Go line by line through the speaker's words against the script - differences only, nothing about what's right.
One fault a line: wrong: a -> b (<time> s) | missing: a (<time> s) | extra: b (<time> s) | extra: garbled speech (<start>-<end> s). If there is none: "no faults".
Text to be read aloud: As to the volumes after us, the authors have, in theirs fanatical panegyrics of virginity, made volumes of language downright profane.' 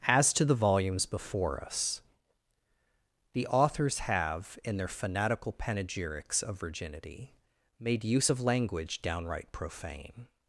wrong: after -> before (1.1 s)
wrong: theirs -> their (4.8 s)
wrong: volumes -> use (8.0 s)